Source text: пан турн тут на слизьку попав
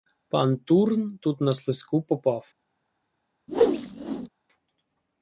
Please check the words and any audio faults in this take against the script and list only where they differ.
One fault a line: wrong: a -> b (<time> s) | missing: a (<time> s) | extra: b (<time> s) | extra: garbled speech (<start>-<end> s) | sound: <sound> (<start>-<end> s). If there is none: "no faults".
sound: whoosh (3.5-4.3 s)